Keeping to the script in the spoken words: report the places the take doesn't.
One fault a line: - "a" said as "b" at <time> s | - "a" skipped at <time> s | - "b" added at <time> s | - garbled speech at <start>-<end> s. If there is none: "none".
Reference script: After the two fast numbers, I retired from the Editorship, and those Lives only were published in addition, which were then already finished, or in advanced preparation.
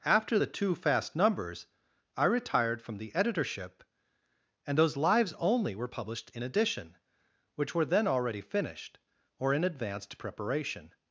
none